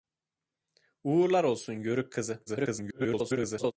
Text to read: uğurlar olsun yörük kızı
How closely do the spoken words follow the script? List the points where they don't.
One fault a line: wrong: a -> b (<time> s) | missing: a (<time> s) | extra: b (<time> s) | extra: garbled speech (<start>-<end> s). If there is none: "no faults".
extra: garbled speech (2.5-3.7 s)